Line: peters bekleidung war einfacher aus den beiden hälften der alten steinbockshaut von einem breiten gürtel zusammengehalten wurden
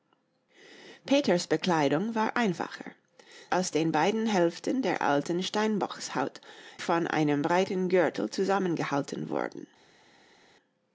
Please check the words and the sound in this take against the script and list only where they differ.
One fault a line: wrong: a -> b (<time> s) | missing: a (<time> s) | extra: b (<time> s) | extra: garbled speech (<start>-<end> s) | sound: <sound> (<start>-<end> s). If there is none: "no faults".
no faults